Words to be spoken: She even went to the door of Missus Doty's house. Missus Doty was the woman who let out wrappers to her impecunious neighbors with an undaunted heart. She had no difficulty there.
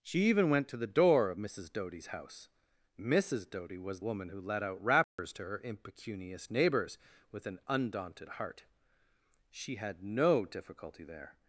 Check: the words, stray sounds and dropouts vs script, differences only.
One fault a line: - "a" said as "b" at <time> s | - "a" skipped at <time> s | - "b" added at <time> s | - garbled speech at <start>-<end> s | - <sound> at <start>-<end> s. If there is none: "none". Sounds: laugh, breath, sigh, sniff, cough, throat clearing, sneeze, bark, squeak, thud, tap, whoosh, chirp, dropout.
- "the" skipped at 4.0 s
- dropout at 5.0-5.2 s